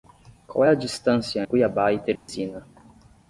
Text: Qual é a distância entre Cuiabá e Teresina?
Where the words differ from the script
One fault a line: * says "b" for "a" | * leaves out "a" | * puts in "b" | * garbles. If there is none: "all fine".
* leaves out "entre"